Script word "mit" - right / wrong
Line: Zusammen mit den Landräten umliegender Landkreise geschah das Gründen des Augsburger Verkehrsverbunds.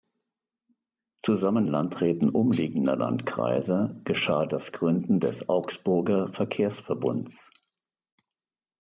wrong